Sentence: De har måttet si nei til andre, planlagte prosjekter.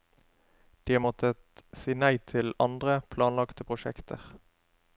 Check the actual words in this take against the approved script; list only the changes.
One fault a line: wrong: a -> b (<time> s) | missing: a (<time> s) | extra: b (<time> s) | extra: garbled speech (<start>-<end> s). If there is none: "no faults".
no faults